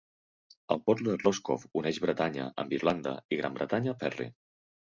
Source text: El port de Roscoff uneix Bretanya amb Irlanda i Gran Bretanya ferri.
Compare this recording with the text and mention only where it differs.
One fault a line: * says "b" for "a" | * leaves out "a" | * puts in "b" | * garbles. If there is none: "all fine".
all fine